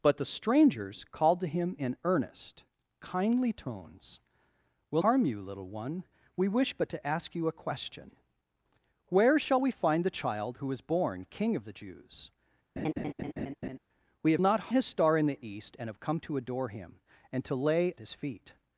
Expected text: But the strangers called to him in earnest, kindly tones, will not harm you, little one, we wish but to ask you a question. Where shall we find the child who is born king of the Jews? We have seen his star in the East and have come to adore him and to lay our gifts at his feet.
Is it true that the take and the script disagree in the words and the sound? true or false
true